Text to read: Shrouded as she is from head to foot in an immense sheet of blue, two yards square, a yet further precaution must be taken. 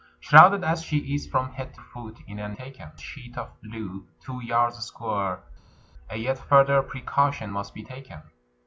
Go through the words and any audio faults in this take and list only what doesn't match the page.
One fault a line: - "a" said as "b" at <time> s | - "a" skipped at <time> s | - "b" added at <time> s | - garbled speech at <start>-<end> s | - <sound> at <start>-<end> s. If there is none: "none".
- "to" skipped at 1.8 s
- "immense" said as "taken" at 2.5 s